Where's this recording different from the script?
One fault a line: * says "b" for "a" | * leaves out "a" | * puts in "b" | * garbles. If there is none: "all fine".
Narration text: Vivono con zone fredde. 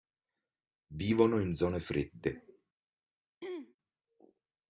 * says "in" for "con"